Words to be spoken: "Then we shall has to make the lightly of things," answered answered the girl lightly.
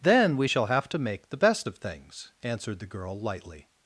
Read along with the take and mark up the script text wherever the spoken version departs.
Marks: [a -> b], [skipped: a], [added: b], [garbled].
"Then we shall [has -> have] to make the [lightly -> best] of things," answered [skipped: answered] the girl lightly.